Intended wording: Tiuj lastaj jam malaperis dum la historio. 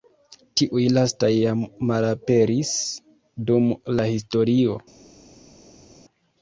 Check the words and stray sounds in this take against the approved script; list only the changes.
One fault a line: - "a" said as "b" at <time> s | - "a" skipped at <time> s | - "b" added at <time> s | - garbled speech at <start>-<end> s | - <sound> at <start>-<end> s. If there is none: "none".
none